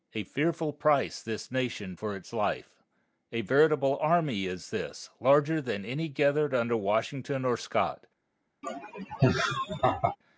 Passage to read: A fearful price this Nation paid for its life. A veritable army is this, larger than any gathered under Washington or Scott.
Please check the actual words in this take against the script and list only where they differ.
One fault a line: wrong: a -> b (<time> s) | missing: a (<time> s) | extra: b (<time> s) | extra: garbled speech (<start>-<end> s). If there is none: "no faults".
missing: paid (1.9 s)